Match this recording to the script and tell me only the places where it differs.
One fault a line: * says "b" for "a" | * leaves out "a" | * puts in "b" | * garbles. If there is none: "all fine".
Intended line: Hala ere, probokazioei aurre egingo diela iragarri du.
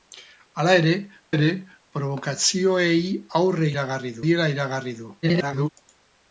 * puts in "ere"
* says "iragarri" for "egingo"
* garbles